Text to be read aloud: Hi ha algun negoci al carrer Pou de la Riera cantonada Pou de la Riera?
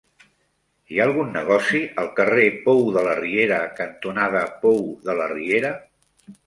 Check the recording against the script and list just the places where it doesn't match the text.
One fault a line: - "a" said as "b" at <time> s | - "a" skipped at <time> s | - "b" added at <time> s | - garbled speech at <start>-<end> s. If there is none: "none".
none